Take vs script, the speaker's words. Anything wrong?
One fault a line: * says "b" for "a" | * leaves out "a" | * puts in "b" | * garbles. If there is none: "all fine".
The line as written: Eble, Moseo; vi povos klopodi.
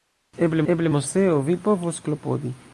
* puts in "eble"